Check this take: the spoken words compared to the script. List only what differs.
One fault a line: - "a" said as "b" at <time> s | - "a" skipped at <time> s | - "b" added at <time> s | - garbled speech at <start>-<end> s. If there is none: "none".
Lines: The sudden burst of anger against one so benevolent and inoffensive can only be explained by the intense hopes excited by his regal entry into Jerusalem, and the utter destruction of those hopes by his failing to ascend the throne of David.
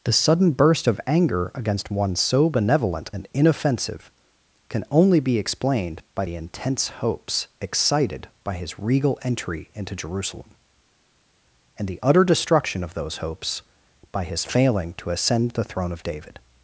none